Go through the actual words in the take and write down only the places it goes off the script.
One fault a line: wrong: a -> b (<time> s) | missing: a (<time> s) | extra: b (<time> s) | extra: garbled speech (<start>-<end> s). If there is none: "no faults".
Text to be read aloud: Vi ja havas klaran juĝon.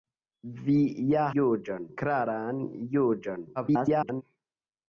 wrong: havas -> juĝon (1.4 s)
extra: garbled speech (3.6-4.2 s)